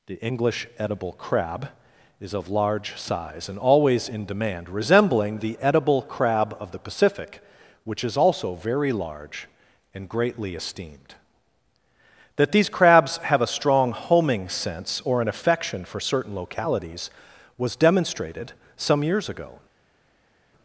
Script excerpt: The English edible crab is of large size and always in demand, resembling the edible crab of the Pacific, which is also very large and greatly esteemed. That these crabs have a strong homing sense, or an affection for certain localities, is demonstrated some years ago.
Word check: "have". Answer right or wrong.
right